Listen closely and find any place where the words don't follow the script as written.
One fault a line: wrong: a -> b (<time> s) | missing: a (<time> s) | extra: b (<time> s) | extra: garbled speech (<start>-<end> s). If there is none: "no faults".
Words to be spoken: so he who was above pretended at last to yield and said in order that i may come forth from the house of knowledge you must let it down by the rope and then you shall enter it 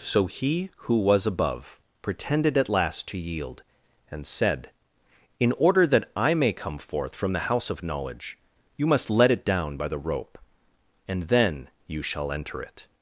no faults